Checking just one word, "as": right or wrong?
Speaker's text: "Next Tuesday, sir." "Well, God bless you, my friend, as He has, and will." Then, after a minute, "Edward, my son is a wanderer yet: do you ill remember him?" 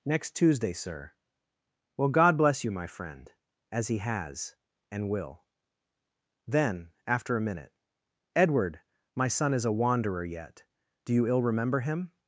right